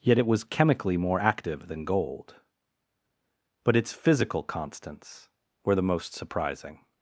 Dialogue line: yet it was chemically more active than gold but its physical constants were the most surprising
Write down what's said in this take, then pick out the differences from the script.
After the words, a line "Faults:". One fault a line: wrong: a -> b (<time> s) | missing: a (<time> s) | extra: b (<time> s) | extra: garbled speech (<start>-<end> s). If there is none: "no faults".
yet it was chemically more active than gold but its physical constants were the most surprising
Faults:
no faults